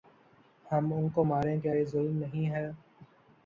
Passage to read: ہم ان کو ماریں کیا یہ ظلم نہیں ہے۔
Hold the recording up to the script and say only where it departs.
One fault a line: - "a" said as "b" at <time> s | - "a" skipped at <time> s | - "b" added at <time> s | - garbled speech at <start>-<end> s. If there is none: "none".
none